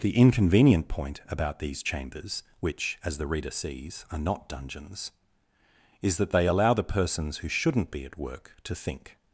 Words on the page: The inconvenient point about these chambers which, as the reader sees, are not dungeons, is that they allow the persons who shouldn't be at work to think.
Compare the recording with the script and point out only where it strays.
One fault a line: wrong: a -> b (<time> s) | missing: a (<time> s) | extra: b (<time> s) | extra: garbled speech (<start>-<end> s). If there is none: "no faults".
no faults